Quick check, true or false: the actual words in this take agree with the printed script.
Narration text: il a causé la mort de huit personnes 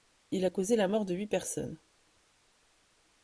true